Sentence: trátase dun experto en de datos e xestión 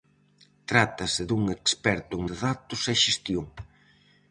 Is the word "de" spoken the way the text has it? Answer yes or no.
yes